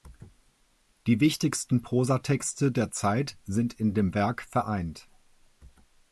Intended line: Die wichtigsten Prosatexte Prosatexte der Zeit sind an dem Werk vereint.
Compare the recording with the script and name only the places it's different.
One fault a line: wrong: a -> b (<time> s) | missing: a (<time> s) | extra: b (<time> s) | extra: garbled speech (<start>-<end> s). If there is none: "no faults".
missing: Prosatexte (2.7 s)
wrong: an -> in (3.7 s)